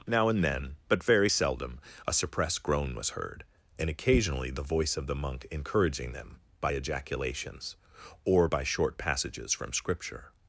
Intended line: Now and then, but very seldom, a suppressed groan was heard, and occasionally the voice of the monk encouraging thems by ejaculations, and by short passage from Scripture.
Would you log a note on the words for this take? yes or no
yes